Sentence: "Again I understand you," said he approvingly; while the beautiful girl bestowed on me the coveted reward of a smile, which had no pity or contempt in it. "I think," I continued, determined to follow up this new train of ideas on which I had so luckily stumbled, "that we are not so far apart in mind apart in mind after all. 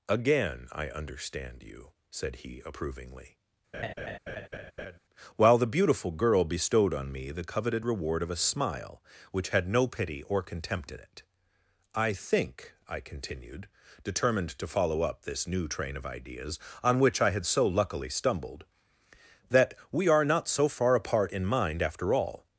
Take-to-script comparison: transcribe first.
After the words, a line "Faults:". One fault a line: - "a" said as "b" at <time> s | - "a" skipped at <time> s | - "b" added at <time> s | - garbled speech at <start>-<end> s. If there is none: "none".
"Again I understand you," said he approvingly; while the beautiful girl bestowed on me the coveted reward of a smile, which had no pity or contempt in it. "I think," I continued, determined to follow up this new train of ideas on which I had so luckily stumbled, "that we are not so far apart in mind after all.
Faults:
- "apart in mind" skipped at 21.8 s